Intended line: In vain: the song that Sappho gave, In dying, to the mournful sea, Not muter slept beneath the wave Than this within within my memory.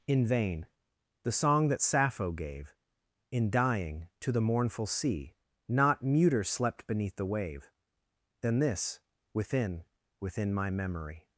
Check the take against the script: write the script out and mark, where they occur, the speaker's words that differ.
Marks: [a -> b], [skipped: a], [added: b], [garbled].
In vain: the song that Sappho gave, In dying, to the mournful sea, Not muter slept beneath the wave Than this within within my memory.